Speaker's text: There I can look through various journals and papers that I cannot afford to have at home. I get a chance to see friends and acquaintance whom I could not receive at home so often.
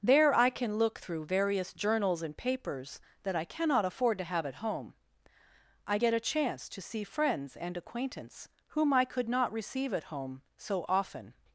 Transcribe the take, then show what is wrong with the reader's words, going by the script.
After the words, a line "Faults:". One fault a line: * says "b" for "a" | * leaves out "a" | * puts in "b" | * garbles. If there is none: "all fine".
There I can look through various journals and papers that I cannot afford to have at home. I get a chance to see friends and acquaintance whom I could not receive at home so often.
Faults:
all fine